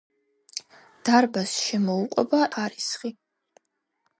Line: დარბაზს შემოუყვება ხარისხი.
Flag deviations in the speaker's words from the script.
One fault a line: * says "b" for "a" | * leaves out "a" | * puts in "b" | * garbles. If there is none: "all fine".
all fine